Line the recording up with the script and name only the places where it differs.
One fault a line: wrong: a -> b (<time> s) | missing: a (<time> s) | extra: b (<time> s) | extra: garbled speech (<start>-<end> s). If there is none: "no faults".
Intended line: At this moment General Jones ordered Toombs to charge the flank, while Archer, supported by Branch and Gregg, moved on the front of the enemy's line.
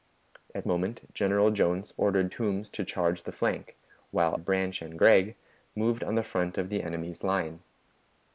missing: this (0.7 s)
missing: Archer supported by (4.3 s)